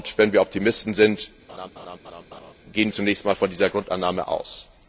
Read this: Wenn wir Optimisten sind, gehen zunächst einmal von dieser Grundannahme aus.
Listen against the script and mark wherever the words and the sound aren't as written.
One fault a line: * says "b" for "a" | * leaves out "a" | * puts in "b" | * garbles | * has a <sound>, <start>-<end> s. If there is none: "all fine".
* has a laugh, 1.5-2.5 s